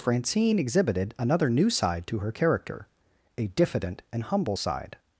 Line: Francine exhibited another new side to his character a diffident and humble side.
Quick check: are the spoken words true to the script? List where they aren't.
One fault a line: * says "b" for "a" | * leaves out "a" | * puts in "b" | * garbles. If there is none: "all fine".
* says "her" for "his"